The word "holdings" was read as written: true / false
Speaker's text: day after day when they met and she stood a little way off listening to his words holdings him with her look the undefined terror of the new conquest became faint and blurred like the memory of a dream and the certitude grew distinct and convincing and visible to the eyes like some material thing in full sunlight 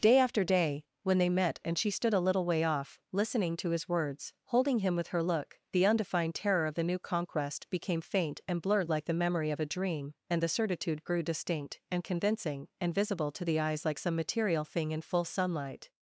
false